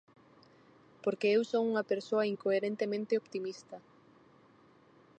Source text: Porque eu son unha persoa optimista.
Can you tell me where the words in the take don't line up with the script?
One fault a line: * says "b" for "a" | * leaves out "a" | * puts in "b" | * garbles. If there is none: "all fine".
* puts in "incoherentemente"